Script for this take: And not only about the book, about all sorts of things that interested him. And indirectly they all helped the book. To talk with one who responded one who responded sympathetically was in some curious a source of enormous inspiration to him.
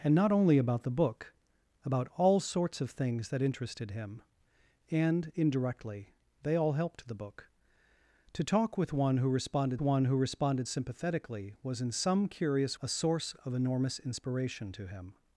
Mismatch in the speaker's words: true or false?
false